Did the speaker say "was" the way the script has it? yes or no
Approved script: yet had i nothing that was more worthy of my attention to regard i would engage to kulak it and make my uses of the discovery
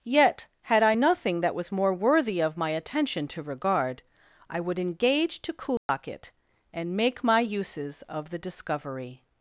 yes